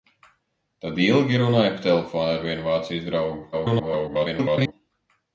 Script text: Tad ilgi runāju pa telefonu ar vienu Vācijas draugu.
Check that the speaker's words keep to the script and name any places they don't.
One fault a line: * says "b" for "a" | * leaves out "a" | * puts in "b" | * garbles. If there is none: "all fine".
* garbles